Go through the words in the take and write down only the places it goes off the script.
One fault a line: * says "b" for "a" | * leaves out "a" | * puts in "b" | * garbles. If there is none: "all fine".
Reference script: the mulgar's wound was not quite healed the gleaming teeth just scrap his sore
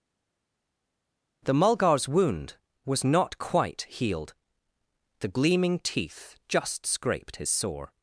* says "scraped" for "scrap"